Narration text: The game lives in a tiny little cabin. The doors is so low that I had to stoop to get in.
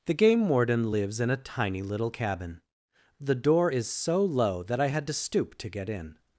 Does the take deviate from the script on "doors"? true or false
true